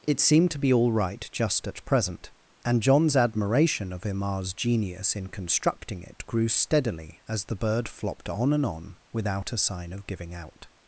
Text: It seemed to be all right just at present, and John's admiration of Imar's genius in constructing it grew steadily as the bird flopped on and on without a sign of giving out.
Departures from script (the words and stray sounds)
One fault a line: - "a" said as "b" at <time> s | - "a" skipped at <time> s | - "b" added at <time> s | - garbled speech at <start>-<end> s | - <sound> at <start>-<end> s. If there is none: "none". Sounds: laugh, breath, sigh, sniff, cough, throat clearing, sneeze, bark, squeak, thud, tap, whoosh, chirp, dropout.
none